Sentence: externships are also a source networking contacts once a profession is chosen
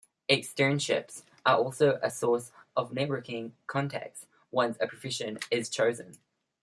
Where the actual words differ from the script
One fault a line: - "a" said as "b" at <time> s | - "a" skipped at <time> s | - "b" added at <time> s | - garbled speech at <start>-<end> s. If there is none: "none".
- "of" added at 2.7 s